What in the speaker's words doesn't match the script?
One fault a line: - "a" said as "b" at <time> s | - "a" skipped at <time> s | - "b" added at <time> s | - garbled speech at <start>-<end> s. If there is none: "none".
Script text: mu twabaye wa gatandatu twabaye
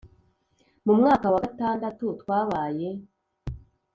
- "twabaye" said as "mwaka" at 1.0 s